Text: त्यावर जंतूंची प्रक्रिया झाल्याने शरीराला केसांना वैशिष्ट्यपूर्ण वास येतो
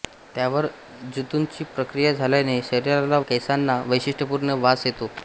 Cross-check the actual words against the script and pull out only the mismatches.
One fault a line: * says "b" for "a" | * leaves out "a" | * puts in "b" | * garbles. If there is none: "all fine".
all fine